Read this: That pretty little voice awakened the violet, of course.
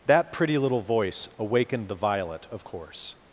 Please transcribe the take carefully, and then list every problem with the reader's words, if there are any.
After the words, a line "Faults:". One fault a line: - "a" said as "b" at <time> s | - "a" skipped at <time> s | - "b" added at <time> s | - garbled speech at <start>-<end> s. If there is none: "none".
That pretty little voice awakened the violet, of course.
Faults:
none